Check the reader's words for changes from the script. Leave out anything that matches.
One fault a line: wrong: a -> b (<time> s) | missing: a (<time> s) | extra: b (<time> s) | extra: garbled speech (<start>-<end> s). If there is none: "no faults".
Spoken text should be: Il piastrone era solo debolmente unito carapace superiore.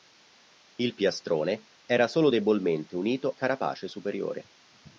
no faults